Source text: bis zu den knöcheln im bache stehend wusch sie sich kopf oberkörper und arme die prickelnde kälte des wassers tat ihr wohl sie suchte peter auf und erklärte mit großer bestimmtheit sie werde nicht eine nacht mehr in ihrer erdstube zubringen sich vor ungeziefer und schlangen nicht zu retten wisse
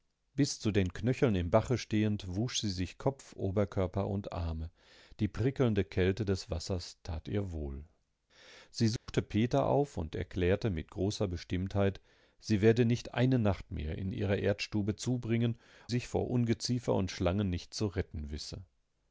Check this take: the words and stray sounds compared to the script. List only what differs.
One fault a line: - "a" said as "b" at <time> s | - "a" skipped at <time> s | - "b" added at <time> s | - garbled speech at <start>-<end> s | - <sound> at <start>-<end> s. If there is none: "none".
- dropout at 9.0-9.1 s